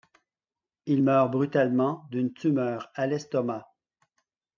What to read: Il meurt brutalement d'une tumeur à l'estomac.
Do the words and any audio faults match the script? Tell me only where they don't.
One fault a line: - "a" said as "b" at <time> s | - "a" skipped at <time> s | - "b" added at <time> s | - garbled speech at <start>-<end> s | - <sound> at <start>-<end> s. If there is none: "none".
none